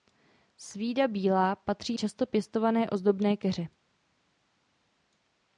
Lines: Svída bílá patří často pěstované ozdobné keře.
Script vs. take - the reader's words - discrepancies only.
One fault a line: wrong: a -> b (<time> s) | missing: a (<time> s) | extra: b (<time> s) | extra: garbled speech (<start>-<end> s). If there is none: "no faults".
no faults